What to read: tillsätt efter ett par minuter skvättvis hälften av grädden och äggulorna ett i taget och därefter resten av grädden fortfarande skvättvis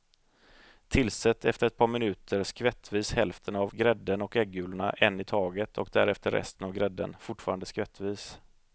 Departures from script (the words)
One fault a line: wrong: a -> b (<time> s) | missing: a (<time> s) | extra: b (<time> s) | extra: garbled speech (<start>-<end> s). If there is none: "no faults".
wrong: ett -> en (4.9 s)